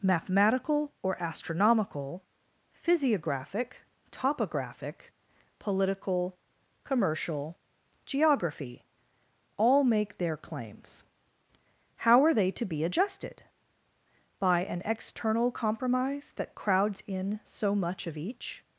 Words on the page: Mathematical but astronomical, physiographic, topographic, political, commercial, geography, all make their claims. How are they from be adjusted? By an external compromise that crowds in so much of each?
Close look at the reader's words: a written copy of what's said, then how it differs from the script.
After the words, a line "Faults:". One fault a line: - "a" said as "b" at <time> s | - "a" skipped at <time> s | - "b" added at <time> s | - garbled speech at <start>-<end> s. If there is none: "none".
Mathematical or astronomical, physiographic, topographic, political, commercial, geography, all make their claims. How are they to be adjusted? By an external compromise that crowds in so much of each?
Faults:
- "but" said as "or" at 1.0 s
- "from" said as "to" at 12.5 s